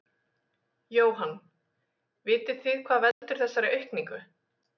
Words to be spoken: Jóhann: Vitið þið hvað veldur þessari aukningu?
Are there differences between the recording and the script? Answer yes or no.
no